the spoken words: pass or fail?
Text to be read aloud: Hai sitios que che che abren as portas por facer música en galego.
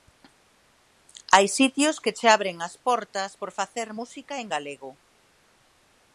fail